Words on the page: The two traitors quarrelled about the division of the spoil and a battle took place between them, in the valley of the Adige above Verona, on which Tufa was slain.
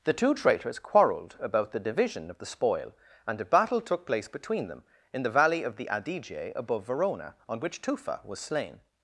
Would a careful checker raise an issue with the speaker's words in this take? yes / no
no